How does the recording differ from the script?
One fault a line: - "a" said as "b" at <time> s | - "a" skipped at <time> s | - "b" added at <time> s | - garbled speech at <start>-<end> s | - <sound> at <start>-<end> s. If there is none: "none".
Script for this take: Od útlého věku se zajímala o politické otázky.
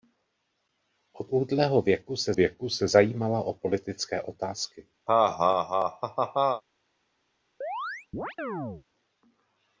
- "věku se" added at 2.3 s
- laugh at 5.1-6.6 s
- chirp at 7.6-8.8 s